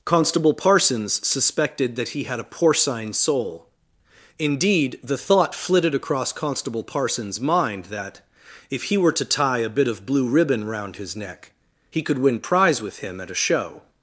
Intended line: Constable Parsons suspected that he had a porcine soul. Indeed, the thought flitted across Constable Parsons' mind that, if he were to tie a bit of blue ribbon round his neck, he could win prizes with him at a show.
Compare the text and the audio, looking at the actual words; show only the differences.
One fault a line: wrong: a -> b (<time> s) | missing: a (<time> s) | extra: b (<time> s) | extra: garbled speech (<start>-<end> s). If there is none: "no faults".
wrong: prizes -> prize (12.4 s)